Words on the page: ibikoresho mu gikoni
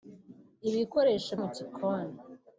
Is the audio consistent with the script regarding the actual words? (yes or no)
yes